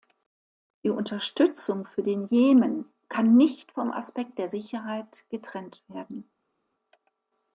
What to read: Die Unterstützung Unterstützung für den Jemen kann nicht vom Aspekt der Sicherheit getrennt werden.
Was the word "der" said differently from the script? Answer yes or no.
no